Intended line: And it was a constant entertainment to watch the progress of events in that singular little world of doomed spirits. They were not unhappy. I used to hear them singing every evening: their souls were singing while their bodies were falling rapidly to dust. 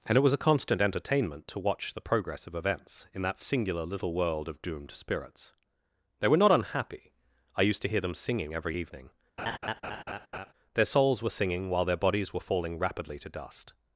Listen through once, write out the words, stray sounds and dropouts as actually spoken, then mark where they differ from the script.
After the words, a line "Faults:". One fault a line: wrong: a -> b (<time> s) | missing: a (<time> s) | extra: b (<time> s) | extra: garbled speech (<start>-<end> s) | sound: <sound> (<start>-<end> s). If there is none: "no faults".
And it was a constant entertainment to watch the progress of events in that singular little world of doomed spirits. They were not unhappy. I used to hear them singing every evening: their souls were singing while their bodies were falling rapidly to dust.
Faults:
sound: laugh (9.4-10.5 s)